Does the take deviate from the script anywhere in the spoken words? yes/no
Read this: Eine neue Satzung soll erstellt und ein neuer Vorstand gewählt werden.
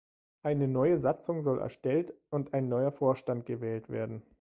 no